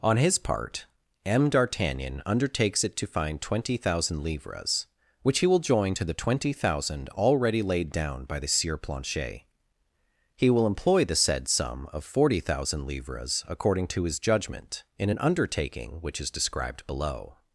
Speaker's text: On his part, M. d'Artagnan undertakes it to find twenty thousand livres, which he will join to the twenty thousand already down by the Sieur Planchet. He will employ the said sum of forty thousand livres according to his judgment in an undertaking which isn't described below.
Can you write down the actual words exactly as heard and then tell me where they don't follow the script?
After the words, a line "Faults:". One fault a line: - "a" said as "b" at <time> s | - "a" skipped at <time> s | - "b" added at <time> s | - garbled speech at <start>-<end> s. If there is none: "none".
On his part, M. d'Artagnan undertakes it to find twenty thousand livres, which he will join to the twenty thousand already laid down by the Sieur Planchet. He will employ the said sum of forty thousand livres according to his judgment in an undertaking which is described below.
Faults:
- "laid" added at 7.6 s
- "isn't" said as "is" at 16.2 s